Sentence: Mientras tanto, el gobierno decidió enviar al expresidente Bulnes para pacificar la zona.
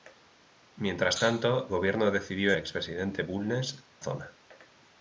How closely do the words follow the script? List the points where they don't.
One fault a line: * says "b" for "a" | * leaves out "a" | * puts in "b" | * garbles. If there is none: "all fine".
* leaves out "el"
* leaves out "enviar al"
* leaves out "para pacificar la"